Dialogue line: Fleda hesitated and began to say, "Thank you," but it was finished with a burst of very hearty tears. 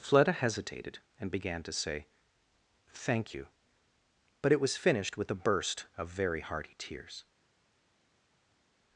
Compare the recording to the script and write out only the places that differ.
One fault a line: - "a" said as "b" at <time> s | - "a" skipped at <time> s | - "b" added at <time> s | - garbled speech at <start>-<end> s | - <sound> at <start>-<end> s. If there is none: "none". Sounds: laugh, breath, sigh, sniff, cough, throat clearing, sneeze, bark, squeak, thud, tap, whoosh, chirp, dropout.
none